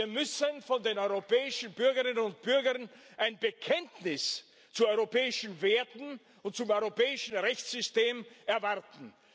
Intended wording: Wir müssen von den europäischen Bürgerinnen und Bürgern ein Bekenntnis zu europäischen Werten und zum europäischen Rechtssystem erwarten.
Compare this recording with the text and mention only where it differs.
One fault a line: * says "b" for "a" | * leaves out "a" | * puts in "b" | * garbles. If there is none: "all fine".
all fine